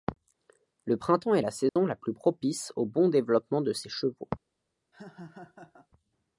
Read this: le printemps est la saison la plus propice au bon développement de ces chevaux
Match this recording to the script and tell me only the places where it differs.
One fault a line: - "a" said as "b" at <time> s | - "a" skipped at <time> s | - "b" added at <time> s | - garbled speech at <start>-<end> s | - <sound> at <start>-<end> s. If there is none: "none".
- dropout at 1.7-1.8 s
- laugh at 4.9-5.9 s